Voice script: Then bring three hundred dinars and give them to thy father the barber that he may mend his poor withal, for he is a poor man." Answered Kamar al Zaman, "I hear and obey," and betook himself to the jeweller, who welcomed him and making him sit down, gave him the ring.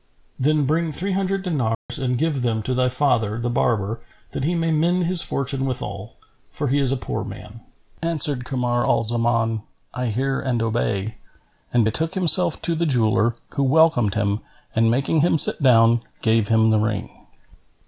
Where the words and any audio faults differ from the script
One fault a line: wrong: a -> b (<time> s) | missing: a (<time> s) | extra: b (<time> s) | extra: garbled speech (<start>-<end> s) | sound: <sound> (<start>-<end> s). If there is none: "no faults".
sound: dropout (1.7-1.9 s)
wrong: poor -> fortune (5.2 s)